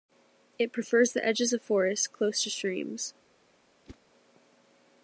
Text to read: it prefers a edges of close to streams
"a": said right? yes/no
no